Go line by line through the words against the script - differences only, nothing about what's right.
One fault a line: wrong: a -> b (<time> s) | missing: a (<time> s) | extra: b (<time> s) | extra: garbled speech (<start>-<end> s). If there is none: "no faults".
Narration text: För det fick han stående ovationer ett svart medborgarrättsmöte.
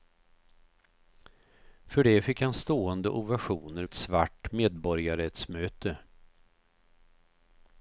no faults